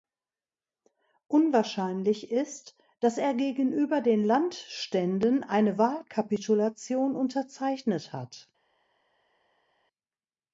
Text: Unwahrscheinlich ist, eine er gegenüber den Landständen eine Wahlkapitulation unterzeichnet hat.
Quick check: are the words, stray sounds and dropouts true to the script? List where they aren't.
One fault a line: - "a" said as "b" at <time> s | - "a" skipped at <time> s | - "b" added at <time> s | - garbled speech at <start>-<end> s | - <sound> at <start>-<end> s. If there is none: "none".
- "eine" said as "dass" at 3.0 s